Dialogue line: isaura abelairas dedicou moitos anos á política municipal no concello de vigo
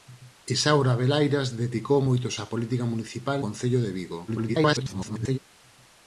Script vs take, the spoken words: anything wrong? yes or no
yes